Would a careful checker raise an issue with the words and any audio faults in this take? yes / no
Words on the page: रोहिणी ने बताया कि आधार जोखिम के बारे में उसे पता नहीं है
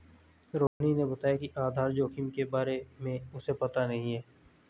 yes